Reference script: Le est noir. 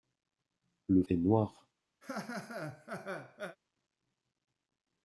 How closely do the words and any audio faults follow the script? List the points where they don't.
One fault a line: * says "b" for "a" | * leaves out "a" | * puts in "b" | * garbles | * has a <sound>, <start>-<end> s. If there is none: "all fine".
* has a laugh, 2.0-3.6 s